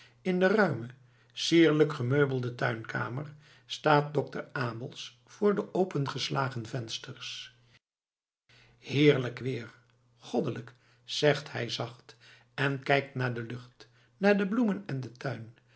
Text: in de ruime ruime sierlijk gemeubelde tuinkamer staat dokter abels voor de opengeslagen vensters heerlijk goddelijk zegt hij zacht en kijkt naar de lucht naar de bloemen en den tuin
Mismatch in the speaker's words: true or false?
true